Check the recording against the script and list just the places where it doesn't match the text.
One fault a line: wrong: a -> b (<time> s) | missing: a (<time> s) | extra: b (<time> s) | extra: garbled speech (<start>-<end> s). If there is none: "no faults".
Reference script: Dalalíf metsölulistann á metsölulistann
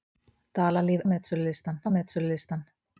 no faults